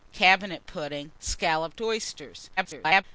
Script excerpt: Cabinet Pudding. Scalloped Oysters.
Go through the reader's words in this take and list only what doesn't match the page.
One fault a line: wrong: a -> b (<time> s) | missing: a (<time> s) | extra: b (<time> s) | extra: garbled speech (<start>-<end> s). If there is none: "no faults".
extra: garbled speech (2.6-3.0 s)